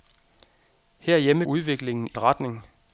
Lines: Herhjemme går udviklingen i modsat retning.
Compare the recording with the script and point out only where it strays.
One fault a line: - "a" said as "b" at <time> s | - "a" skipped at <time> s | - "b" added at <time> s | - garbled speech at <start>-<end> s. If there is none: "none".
- "går" skipped at 1.4 s
- "modsat" skipped at 2.2 s